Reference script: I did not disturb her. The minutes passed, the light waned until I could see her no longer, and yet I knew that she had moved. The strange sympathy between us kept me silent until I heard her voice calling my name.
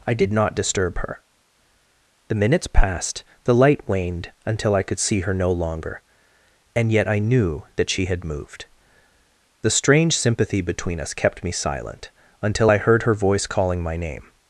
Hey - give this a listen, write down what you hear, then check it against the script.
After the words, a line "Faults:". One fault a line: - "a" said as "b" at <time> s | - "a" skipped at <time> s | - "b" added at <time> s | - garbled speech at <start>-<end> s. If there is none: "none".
I did not disturb her. The minutes passed, the light waned until I could see her no longer, and yet I knew that she had moved. The strange sympathy between us kept me silent until I heard her voice calling my name.
Faults:
none